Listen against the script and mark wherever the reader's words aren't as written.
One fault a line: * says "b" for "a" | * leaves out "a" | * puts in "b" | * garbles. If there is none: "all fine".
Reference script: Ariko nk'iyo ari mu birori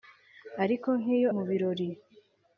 * leaves out "ari"